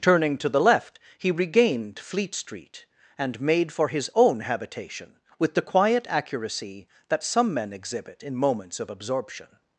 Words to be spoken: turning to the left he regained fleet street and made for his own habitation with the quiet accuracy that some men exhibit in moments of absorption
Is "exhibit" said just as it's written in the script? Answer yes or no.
yes